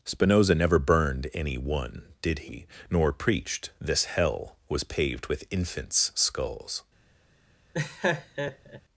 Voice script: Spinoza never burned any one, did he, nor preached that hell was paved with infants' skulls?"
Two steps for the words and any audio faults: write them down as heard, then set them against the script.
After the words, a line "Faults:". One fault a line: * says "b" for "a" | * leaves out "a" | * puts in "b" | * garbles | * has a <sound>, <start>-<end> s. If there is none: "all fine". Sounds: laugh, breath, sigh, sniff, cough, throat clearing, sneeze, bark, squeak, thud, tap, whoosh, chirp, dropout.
Spinoza never burned any one, did he, nor preached this hell was paved with infants' skulls?"
Faults:
* says "this" for "that"
* has a laugh, 7.7-8.8 s